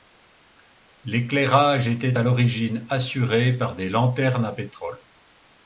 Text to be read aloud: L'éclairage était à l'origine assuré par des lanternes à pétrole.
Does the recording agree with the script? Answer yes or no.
yes